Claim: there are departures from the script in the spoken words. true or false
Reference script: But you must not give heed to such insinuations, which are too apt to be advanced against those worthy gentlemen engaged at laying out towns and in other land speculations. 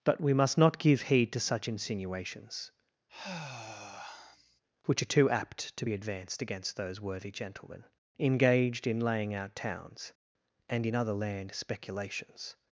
true